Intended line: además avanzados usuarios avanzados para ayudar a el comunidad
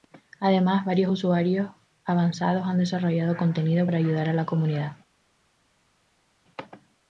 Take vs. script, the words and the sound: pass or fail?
fail